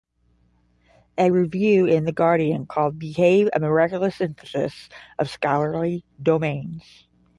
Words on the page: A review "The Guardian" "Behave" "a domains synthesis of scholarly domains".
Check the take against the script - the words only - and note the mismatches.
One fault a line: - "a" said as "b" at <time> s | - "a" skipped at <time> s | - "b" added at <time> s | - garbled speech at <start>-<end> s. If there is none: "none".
- "in" added at 1.9 s
- "called" added at 2.7 s
- "domains" said as "miraculous" at 3.6 s